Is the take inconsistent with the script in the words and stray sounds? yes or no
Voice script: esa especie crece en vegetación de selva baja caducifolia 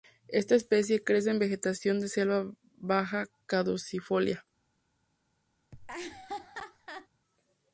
yes